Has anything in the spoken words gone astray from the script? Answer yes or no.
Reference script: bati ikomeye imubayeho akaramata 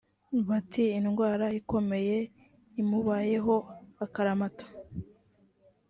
yes